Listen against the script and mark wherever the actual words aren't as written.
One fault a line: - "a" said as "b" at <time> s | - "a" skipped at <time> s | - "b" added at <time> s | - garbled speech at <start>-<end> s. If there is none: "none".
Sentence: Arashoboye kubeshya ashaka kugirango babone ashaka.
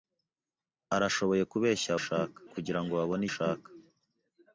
none